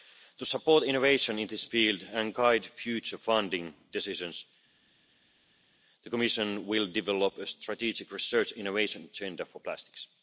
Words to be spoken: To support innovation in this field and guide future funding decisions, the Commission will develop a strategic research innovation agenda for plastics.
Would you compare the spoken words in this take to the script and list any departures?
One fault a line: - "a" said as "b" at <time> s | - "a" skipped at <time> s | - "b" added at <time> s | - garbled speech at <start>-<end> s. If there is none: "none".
none